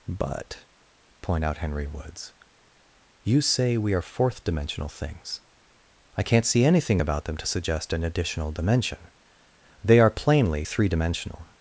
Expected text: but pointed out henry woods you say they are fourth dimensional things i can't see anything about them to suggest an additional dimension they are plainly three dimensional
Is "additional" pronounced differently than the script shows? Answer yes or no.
no